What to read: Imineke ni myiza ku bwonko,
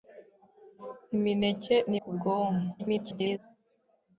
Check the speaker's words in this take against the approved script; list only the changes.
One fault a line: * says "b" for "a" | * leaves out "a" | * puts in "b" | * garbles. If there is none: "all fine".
* leaves out "myiza"
* garbles